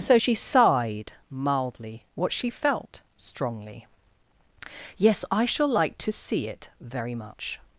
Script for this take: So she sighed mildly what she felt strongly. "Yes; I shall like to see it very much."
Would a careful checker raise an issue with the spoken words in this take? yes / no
no